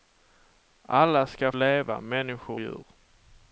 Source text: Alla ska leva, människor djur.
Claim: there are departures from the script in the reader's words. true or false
false